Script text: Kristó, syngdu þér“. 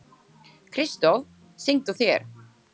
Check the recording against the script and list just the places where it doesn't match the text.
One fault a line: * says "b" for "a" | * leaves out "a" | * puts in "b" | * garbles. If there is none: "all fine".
all fine